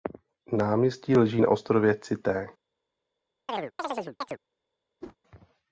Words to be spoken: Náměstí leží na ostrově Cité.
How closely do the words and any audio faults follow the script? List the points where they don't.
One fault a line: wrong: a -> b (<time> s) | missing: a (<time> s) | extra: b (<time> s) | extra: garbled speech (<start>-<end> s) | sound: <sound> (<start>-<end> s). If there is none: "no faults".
sound: chirp (3.5-4.4 s)
sound: whoosh (5.0-5.2 s)